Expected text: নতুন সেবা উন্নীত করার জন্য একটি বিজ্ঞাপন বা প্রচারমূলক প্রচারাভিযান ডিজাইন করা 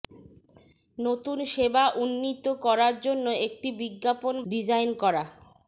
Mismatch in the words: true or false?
true